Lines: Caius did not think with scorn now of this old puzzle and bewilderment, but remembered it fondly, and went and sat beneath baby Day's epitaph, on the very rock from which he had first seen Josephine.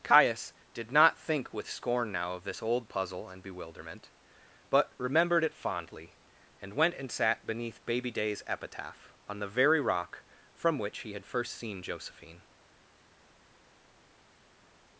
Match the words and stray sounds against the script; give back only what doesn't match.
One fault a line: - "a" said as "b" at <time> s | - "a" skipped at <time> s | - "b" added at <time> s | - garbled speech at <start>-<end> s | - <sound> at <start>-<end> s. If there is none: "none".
none